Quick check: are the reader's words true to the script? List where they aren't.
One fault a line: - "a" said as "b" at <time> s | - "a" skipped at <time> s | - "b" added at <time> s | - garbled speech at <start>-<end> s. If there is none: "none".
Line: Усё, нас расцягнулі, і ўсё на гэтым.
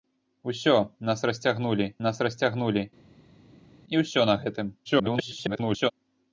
- "нас расцягнулі" added at 2.1 s
- garbled speech at 4.8-5.9 s